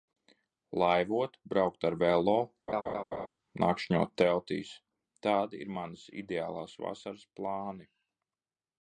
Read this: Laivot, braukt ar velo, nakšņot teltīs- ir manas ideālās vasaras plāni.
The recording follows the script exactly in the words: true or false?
false